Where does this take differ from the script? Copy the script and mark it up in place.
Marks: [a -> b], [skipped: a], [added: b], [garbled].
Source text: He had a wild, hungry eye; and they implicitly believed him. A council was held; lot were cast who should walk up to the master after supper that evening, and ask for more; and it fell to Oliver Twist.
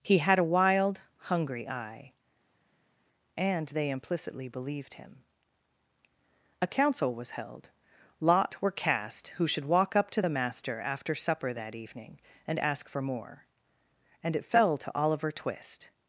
He had a wild, hungry eye; and they implicitly believed him. A council was held; lot were cast who should walk up to the master after supper that evening, and ask for more; and it fell to Oliver Twist.